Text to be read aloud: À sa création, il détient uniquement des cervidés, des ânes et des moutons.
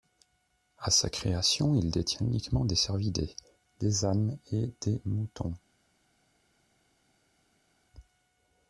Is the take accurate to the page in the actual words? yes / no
yes